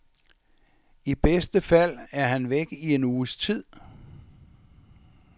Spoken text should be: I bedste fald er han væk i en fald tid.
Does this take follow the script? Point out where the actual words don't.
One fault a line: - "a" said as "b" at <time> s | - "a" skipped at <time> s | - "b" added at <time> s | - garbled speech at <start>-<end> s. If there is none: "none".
- "fald" said as "uges" at 3.0 s